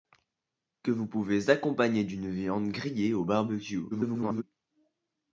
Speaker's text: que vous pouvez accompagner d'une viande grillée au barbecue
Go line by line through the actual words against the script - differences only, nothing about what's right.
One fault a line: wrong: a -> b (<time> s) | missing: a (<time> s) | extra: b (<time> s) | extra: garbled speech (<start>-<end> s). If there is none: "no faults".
extra: garbled speech (3.9-4.4 s)